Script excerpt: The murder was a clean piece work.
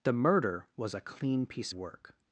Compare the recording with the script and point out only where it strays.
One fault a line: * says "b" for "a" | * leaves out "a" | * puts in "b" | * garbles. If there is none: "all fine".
all fine